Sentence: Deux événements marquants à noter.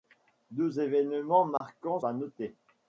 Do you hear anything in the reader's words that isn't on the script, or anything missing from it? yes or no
no